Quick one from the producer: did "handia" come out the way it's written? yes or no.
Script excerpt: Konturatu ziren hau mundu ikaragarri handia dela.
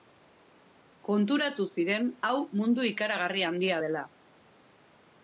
yes